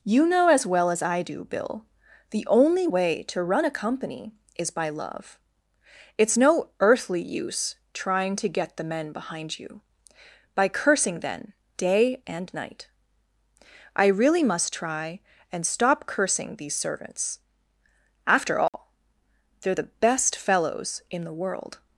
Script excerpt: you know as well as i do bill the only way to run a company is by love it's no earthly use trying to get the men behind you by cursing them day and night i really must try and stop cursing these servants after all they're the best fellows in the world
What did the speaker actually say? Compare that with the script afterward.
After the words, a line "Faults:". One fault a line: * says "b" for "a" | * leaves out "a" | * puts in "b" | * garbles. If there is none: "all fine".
you know as well as i do bill the only way to run a company is by love it's no earthly use trying to get the men behind you by cursing then day and night i really must try and stop cursing these servants after all they're the best fellows in the world
Faults:
* says "then" for "them"